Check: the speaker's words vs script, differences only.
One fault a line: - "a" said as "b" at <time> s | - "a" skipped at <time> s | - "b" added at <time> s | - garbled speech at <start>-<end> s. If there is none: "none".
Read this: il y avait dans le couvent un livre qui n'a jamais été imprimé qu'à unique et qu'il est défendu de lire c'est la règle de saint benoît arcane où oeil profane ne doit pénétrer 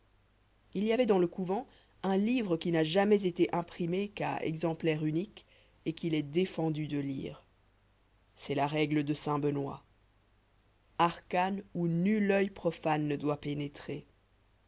- "exemplaire" added at 4.4 s
- "nul" added at 11.9 s